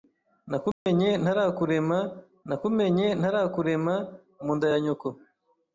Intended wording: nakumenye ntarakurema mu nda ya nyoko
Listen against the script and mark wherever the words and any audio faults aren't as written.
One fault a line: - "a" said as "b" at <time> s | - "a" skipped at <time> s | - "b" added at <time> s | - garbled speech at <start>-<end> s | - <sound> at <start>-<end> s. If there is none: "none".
- dropout at 0.7-0.9 s
- "nakumenye ntarakurema" added at 2.5 s